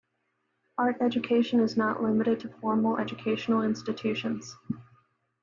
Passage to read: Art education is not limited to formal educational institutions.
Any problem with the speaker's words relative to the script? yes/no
no